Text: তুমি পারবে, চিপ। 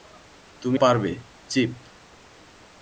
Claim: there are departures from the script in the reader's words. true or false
false